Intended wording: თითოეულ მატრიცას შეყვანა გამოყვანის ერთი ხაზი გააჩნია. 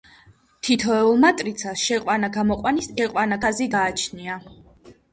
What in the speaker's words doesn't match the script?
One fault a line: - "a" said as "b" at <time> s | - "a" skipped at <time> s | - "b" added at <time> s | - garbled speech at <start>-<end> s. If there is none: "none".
- "ერთი" said as "შეყვანა" at 3.0 s